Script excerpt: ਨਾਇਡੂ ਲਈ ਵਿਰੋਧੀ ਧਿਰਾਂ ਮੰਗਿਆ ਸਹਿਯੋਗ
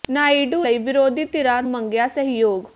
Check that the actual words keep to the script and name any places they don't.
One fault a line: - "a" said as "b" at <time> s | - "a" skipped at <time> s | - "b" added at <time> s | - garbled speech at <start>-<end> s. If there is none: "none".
none